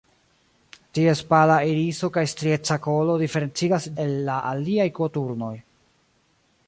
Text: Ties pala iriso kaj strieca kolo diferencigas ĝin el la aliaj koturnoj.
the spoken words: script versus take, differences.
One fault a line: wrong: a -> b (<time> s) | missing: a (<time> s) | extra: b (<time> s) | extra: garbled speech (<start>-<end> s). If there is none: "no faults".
missing: ĝin (3.9 s)